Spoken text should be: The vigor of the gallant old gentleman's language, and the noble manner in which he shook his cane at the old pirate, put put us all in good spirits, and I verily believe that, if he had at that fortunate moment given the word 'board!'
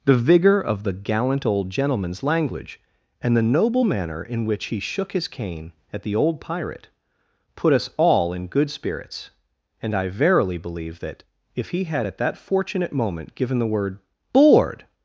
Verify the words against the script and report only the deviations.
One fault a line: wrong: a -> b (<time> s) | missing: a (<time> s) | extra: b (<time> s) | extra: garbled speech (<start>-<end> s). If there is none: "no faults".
missing: put (7.7 s)